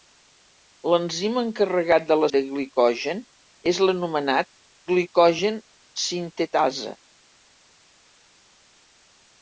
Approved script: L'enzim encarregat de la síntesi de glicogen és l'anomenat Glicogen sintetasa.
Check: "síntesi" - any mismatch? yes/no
yes